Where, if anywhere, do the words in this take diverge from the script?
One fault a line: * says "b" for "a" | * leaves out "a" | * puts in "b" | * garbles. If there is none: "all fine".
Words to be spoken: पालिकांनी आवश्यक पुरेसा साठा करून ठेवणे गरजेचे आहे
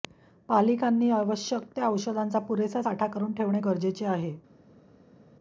* puts in "त्या औषधांचा"